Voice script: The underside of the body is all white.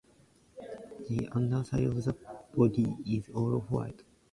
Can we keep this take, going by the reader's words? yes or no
yes